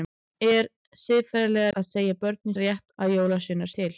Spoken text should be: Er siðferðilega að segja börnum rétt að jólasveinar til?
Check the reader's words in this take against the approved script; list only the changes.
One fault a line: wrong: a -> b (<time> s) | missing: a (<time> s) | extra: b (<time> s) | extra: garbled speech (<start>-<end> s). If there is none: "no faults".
no faults